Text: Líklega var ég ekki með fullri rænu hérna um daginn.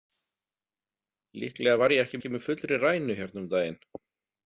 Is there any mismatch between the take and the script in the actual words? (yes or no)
yes